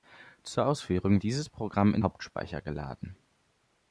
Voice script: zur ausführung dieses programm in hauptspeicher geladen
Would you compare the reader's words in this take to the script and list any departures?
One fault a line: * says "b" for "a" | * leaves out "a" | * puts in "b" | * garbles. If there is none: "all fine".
all fine